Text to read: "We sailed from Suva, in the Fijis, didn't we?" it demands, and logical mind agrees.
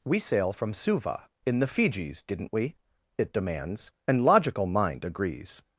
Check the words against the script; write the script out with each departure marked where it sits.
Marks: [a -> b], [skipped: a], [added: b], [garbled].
"We [sailed -> sail] from Suva, in the Fijis, didn't we?" it demands, and logical mind agrees.